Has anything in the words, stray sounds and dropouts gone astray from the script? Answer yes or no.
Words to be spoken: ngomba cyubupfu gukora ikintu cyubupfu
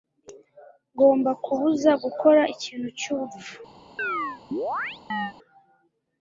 yes